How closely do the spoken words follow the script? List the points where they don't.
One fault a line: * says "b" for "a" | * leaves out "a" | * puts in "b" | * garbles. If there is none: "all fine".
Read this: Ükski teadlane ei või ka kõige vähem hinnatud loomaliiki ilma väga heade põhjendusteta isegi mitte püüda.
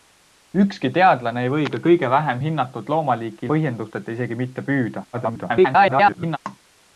* leaves out "ilma väga heade"
* garbles